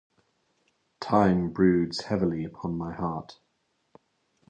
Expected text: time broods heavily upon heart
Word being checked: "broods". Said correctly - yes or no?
yes